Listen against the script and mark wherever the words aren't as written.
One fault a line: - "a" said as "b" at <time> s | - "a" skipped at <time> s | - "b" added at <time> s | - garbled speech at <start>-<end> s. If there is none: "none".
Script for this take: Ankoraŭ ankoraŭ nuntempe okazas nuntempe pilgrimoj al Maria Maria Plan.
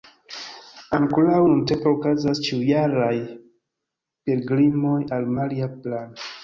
- "ankoraŭ" skipped at 1.4 s
- "nuntempe" said as "ĉiujaraj" at 2.5 s
- "Maria" skipped at 5.8 s